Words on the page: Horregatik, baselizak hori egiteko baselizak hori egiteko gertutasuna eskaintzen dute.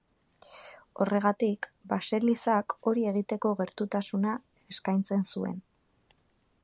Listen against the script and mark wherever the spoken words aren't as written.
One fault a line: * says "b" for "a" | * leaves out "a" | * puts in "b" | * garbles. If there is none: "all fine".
* leaves out "baselizak hori egiteko"
* says "zuen" for "dute"